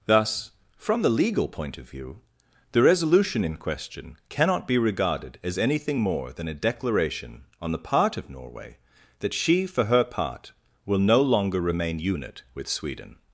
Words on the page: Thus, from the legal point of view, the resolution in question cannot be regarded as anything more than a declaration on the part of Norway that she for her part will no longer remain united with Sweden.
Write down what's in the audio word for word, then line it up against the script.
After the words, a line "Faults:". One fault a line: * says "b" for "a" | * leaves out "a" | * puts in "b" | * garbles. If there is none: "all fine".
Thus, from the legal point of view, the resolution in question cannot be regarded as anything more than a declaration on the part of Norway that she for her part will no longer remain unit with Sweden.
Faults:
* says "unit" for "united"